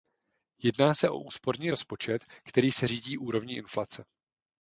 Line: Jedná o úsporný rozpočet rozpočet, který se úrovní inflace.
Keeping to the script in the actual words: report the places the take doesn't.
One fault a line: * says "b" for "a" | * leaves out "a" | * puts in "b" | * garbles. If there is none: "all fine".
* puts in "se"
* leaves out "rozpočet"
* puts in "řídí"